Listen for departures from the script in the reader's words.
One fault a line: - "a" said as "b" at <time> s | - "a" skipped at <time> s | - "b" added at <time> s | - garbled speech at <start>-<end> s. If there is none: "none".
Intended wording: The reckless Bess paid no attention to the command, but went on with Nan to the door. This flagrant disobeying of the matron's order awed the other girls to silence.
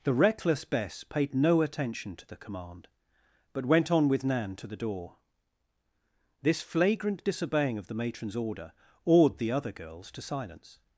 none